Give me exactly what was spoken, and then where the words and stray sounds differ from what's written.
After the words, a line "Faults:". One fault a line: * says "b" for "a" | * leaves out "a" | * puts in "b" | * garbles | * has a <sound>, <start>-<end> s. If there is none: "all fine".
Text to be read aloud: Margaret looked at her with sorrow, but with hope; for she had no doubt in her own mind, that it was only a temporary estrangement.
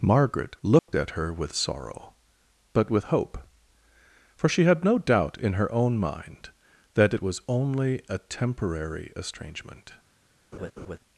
Margaret looked at her with sorrow, but with hope; for she had no doubt in her own mind, that it was only a temporary estrangement.
Faults:
* has a dropout, 0.8-0.9 s
* has a laugh, 10.5-11.0 s